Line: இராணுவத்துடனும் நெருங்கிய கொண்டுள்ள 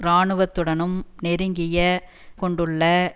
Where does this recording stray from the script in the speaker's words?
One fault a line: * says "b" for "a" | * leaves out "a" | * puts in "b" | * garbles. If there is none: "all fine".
all fine